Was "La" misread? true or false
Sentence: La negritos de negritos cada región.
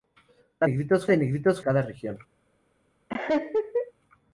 false